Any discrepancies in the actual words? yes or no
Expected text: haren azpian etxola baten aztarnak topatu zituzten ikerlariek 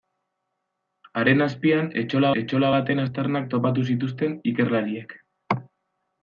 yes